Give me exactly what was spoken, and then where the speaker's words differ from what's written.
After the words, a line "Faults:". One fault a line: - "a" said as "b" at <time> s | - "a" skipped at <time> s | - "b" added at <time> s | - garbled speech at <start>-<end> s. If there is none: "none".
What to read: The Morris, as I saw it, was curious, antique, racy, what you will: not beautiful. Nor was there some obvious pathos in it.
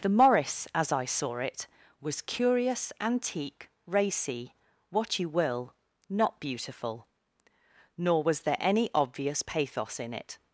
The Morris, as I saw it, was curious, antique, racy, what you will: not beautiful. Nor was there any obvious pathos in it.
Faults:
- "some" said as "any" at 8.6 s